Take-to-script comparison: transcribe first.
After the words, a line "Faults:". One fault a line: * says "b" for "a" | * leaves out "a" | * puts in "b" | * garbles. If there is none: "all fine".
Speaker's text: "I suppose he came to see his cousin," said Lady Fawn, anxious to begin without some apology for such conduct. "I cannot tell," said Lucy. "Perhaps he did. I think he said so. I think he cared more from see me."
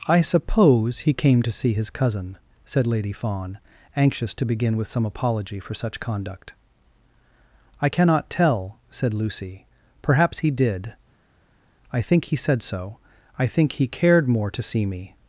"I suppose he came to see his cousin," said Lady Fawn, anxious to begin with some apology for such conduct. "I cannot tell," said Lucy. "Perhaps he did. I think he said so. I think he cared more to see me."
Faults:
* says "with" for "without"
* says "to" for "from"